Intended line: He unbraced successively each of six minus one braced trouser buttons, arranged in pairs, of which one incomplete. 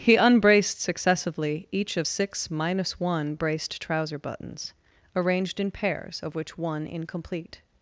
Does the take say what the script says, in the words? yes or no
yes